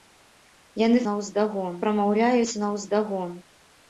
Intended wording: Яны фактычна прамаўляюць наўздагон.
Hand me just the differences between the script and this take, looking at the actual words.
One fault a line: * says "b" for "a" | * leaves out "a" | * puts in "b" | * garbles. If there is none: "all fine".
* says "наўздагон" for "фактычна"